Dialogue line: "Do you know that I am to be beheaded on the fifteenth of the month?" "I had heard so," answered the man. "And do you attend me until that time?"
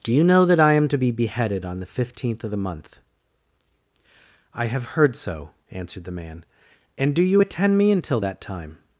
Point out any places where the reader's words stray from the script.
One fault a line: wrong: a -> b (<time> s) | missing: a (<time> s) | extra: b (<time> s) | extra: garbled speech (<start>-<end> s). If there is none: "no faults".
wrong: had -> have (4.7 s)